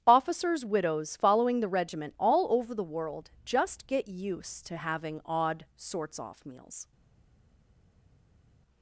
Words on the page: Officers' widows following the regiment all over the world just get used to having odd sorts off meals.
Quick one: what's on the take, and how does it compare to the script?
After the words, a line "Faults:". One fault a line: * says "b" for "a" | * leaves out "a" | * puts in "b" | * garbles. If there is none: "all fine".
Officers' widows following the regiment all over the world just get used to having odd sorts off meals.
Faults:
all fine